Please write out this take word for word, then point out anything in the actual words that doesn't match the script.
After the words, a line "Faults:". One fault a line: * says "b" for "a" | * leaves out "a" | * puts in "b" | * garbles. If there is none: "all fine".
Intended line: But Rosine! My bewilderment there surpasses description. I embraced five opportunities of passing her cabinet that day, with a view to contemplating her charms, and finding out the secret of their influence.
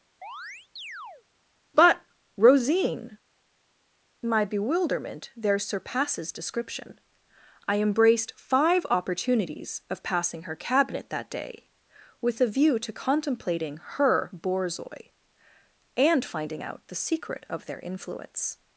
But Rosine! My bewilderment there surpasses description. I embraced five opportunities of passing her cabinet that day, with a view to contemplating her borzoi, and finding out the secret of their influence.
Faults:
* says "borzoi" for "charms"